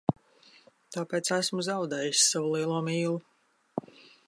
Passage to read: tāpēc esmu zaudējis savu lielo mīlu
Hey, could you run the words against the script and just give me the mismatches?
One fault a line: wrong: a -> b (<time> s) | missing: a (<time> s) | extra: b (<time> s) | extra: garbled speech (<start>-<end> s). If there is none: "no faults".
no faults